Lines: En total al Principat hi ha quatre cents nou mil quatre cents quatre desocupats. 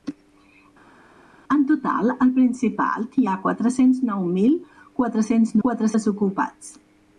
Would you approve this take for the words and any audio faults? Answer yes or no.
yes